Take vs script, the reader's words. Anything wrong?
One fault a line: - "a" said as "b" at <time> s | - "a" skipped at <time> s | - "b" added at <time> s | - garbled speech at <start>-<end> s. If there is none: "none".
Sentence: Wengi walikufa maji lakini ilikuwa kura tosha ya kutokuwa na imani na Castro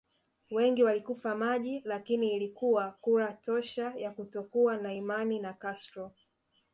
none